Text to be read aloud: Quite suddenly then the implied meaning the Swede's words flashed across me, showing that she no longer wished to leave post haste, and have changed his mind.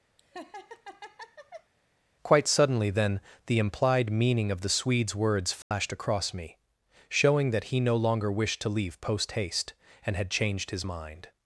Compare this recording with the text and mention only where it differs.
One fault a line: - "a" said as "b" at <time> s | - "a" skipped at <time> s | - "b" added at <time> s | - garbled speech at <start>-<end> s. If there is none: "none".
- "of" added at 4.5 s
- "she" said as "he" at 7.7 s
- "have" said as "had" at 10.2 s